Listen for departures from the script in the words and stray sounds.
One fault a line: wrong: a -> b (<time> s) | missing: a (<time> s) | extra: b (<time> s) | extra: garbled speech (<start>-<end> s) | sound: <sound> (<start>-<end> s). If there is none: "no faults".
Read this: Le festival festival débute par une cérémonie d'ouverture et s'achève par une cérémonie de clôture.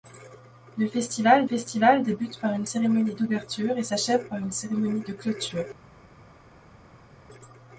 no faults